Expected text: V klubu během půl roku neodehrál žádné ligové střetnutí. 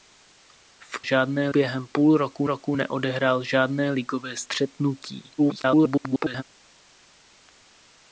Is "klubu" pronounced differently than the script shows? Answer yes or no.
yes